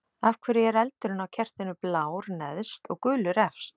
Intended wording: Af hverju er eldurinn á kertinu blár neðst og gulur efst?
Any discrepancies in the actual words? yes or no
no